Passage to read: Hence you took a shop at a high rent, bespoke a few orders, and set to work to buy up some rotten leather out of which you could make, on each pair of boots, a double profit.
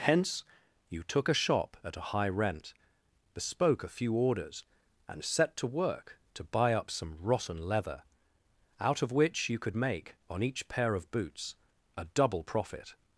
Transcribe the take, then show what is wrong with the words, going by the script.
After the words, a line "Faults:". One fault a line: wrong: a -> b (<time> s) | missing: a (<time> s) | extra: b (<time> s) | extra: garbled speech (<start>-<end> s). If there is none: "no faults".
Hence you took a shop at a high rent, bespoke a few orders, and set to work to buy up some rotten leather out of which you could make, on each pair of boots, a double profit.
Faults:
no faults